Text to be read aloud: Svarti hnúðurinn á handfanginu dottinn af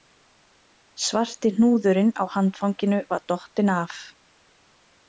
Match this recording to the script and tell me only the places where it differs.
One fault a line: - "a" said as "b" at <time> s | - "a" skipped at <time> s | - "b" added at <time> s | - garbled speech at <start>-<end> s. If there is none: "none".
- "var" added at 3.1 s